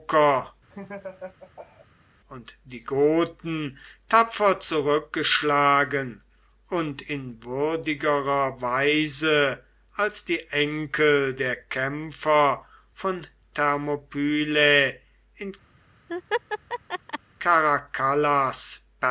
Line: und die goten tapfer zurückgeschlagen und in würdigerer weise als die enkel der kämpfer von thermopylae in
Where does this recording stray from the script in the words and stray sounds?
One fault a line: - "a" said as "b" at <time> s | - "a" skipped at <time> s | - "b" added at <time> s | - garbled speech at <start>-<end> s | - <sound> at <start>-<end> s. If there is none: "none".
- laugh at 0.7-1.9 s
- laugh at 16.1-17.2 s